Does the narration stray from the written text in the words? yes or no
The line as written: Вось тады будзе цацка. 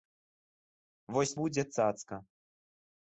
yes